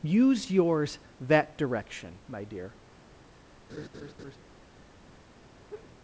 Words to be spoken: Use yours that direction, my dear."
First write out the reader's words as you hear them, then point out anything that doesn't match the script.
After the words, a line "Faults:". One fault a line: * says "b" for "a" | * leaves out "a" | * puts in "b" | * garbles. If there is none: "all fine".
Use yours that direction, my dear."
Faults:
all fine